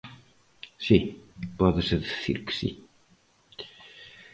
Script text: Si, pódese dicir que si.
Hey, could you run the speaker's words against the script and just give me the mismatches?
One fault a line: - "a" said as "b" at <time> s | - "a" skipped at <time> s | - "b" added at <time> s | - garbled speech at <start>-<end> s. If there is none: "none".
none